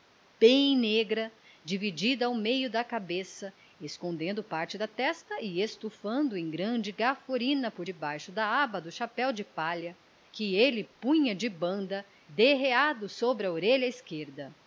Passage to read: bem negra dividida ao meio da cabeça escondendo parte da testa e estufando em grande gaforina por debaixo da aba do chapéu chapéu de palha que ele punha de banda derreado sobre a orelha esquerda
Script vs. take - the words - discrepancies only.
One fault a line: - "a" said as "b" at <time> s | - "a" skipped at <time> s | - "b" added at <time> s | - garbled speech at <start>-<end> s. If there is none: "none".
- "chapéu" skipped at 9.3 s